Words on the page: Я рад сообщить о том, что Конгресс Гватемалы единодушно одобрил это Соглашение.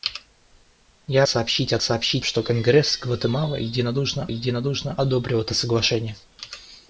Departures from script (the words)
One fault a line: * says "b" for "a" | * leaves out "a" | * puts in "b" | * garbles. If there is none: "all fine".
* leaves out "рад"
* says "сообщить" for "том"
* puts in "единодушно"